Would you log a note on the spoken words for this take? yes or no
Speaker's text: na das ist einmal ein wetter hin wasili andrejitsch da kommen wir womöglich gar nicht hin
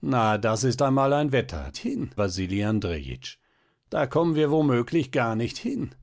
no